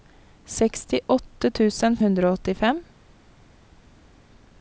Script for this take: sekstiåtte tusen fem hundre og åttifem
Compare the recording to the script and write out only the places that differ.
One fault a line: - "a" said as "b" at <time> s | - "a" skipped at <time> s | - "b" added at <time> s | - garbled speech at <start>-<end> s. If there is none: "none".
- "fem" skipped at 2.0 s